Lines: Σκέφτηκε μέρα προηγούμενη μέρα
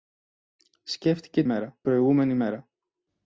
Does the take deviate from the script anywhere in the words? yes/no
no